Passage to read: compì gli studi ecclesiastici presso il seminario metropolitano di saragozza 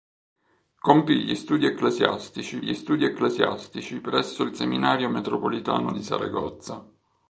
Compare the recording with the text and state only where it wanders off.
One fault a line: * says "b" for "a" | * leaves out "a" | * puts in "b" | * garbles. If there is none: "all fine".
* puts in "gli studi ecclesiastici"